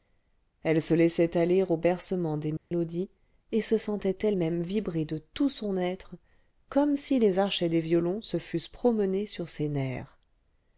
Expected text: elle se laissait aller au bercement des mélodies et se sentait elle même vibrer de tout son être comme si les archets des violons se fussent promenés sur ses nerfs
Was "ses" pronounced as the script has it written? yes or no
yes